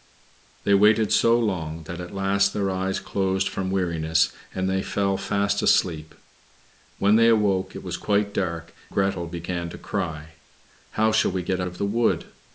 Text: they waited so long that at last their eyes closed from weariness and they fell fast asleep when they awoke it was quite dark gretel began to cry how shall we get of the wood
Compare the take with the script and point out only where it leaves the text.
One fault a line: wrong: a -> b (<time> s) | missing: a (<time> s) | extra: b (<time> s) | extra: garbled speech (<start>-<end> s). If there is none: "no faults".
no faults